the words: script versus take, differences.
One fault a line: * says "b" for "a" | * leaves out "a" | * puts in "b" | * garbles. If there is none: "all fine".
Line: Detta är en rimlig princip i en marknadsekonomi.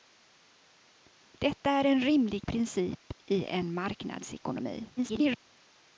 * garbles